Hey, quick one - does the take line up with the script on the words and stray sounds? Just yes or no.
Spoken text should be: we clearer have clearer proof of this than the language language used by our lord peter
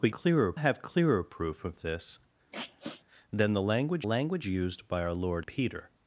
no